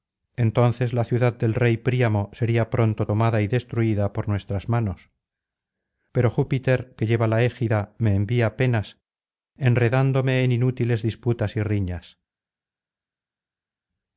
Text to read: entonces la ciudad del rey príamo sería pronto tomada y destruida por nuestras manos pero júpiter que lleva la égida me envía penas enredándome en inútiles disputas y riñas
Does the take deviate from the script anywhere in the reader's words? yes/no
no